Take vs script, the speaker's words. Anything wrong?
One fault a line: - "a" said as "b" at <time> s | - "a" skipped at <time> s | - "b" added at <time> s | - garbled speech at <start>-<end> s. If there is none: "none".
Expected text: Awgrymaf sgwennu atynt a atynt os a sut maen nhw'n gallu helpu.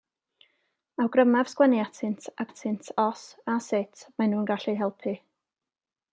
none